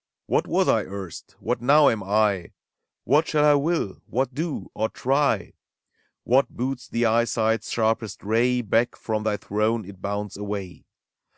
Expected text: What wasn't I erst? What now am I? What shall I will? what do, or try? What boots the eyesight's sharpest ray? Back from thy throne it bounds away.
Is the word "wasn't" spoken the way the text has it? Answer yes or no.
no